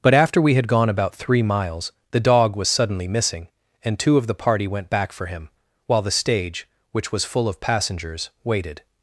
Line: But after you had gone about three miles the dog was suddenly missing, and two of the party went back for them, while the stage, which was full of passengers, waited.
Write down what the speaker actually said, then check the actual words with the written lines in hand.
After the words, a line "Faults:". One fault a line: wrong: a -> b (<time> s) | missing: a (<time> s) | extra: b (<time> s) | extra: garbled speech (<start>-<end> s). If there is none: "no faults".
But after we had gone about three miles the dog was suddenly missing, and two of the party went back for him, while the stage, which was full of passengers, waited.
Faults:
wrong: you -> we (0.4 s)
wrong: them -> him (5.3 s)